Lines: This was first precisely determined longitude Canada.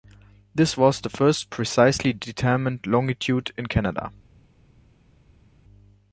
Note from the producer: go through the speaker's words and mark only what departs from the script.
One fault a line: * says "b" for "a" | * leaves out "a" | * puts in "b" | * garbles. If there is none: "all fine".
* puts in "the"
* puts in "in"